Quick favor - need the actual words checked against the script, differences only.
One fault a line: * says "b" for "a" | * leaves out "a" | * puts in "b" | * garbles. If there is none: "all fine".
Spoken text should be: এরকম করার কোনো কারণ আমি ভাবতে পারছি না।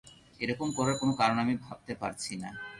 all fine